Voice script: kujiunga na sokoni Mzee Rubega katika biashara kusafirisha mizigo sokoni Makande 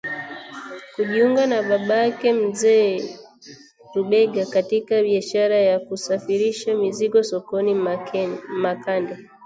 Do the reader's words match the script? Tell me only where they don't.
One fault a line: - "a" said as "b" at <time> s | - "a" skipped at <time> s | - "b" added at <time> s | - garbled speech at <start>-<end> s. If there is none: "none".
- "sokoni" said as "babake" at 1.6 s
- "ya" added at 5.5 s